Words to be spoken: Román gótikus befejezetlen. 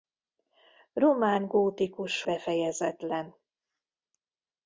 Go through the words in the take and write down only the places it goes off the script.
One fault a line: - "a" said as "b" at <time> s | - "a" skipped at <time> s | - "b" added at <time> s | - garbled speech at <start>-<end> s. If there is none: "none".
none